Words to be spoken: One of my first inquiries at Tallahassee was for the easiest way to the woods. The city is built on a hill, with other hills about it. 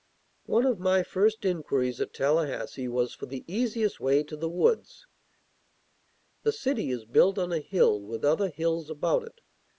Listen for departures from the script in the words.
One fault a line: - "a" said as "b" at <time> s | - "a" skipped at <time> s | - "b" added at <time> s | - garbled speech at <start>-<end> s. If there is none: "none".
none